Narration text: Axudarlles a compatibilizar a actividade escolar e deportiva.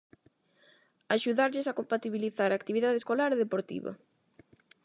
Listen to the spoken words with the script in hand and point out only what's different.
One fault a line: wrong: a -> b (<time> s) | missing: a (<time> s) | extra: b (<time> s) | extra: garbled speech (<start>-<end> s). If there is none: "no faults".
no faults